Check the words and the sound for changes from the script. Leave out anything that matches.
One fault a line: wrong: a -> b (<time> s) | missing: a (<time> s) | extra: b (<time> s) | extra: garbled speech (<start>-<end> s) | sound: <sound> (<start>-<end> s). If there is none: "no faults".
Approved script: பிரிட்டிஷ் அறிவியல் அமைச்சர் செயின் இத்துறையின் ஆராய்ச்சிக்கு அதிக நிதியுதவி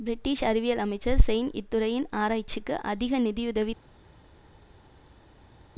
no faults